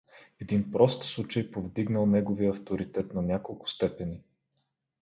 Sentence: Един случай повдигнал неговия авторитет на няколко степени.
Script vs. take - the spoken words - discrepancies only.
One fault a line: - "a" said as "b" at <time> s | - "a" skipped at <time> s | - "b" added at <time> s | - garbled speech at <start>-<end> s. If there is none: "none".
- "прост" added at 0.7 s